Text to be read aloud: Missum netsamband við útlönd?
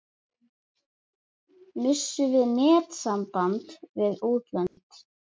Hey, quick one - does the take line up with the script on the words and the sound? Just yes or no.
no